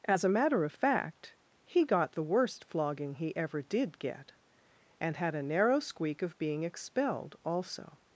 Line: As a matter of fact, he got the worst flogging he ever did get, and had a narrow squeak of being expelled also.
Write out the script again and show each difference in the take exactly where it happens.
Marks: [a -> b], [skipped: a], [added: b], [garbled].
As a matter of fact, he got the worst flogging he ever did get, and had a narrow squeak of being expelled also.